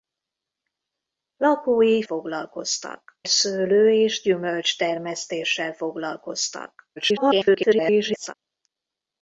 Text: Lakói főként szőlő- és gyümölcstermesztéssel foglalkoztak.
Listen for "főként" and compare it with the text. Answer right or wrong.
wrong